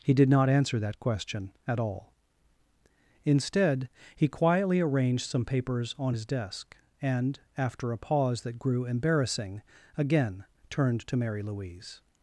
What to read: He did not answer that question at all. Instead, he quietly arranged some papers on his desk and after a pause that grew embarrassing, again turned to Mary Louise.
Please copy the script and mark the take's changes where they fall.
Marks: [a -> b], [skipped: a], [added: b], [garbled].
He did not answer that question at all. Instead, he quietly arranged some papers on his desk and after a pause that grew embarrassing, again turned to Mary Louise.